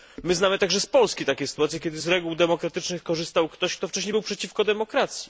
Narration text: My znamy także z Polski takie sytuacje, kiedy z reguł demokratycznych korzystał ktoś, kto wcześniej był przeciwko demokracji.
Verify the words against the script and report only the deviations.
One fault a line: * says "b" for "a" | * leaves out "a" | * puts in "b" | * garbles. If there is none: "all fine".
all fine